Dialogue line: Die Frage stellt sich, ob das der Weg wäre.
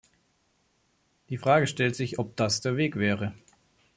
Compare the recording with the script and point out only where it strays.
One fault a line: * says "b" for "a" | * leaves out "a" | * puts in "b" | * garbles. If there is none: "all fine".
all fine